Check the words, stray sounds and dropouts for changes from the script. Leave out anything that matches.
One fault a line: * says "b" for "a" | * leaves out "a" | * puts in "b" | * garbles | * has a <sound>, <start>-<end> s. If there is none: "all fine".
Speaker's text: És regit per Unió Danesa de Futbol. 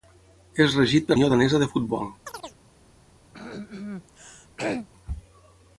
* has a chirp, 2.2-2.6 s
* has a throat clearing, 3.3-4.9 s